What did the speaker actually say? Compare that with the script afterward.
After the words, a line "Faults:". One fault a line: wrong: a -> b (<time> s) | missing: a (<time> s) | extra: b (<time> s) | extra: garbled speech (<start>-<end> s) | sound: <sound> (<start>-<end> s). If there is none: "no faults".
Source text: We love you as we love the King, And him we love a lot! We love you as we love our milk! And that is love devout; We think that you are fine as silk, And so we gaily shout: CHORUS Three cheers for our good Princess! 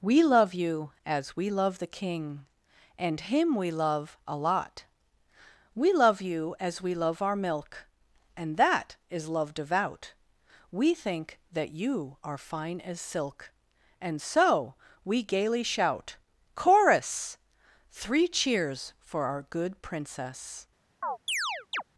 We love you as we love the King, And him we love a lot! We love you as we love our milk! And that is love devout; We think that you are fine as silk, And so we gaily shout: CHORUS Three cheers for our good Princess!
Faults:
sound: chirp (21.0-21.8 s)